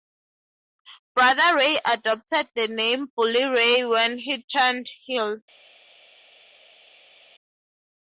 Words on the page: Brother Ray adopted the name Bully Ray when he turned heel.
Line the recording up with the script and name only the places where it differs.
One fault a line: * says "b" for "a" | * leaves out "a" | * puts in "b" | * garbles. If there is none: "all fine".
all fine